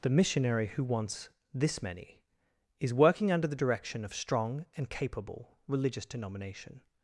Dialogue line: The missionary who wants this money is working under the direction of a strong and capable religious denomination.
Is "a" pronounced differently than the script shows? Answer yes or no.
yes